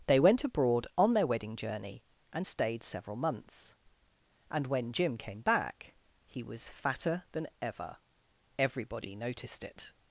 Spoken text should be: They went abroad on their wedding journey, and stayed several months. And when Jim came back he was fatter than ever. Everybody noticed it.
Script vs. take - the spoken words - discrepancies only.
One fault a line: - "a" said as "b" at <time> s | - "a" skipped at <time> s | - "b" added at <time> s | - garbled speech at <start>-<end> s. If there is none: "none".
none